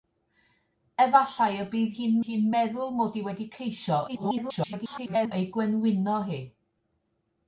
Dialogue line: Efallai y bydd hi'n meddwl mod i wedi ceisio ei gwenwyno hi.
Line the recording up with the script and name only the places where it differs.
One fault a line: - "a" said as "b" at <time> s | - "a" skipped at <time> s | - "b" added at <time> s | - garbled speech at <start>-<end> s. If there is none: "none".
- "hi'n" added at 2.3 s
- garbled speech at 4.1-5.3 s